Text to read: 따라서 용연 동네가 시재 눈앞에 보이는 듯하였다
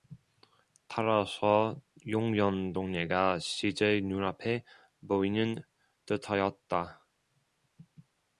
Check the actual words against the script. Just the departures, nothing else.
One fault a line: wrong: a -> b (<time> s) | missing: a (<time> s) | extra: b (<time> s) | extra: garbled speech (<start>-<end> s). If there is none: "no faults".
no faults